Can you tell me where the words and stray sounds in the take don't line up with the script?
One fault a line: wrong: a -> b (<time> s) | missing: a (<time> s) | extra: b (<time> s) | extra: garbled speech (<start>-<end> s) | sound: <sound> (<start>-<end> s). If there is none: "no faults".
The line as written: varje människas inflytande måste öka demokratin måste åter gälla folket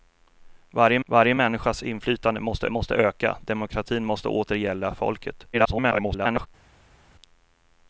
extra: varje (1.1 s)
extra: måste (2.7 s)
extra: garbled speech (5.5-6.5 s)